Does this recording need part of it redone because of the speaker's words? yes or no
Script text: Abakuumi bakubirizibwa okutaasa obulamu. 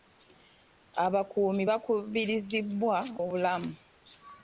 yes